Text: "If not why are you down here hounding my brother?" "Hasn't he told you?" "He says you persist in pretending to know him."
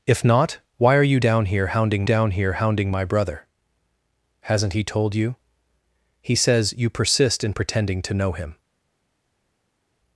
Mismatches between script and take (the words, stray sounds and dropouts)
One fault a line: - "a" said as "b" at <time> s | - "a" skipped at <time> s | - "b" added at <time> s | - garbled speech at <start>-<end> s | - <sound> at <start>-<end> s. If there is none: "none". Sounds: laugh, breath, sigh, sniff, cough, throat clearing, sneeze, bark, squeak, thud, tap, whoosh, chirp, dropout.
- "down here hounding" added at 2.0 s